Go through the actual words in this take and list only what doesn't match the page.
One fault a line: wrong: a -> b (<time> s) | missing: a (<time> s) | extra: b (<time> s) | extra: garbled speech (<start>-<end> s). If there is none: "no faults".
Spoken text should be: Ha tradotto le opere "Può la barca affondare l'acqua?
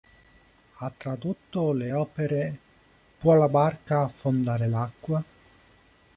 no faults